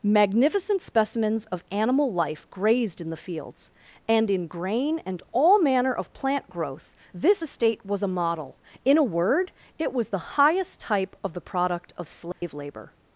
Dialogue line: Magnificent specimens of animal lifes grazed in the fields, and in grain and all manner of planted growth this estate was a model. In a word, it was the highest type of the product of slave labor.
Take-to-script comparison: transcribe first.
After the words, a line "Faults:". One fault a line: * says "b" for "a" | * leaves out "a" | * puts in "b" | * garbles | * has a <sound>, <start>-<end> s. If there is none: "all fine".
Magnificent specimens of animal life grazed in the fields, and in grain and all manner of plant growth this estate was a model. In a word, it was the highest type of the product of slave labor.
Faults:
* says "life" for "lifes"
* says "plant" for "planted"
* has a dropout, 12.3-12.4 s